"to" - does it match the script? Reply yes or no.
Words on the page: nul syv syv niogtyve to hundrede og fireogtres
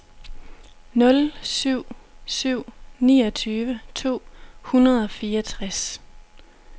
yes